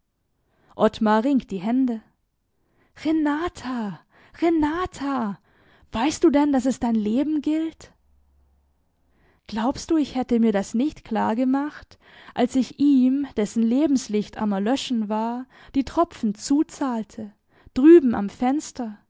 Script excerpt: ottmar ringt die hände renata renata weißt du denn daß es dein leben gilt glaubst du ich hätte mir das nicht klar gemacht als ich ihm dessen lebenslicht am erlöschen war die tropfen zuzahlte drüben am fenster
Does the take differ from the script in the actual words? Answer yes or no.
no